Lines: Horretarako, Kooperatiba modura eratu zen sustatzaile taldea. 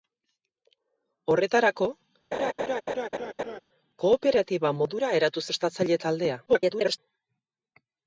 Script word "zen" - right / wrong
wrong